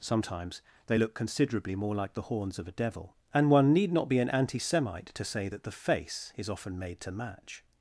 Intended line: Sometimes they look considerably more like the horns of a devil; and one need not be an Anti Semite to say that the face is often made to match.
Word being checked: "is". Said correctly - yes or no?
yes